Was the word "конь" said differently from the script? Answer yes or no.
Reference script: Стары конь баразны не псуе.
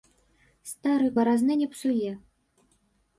yes